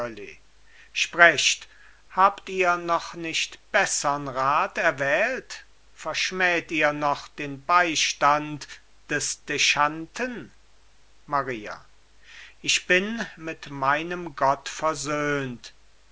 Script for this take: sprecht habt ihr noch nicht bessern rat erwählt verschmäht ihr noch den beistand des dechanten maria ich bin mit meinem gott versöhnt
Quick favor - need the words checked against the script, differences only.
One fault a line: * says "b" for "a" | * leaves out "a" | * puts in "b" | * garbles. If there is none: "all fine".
all fine